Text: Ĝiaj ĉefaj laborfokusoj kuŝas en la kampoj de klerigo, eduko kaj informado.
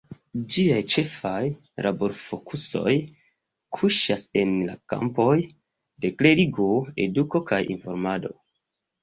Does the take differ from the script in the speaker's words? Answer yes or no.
no